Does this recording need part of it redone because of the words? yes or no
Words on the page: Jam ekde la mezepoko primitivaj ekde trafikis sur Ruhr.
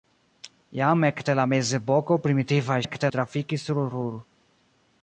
no